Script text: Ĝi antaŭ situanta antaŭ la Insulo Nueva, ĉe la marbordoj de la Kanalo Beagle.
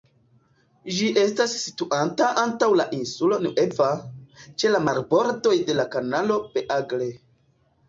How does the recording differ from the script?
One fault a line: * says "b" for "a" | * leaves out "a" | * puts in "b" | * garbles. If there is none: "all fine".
* says "estas" for "antaŭ"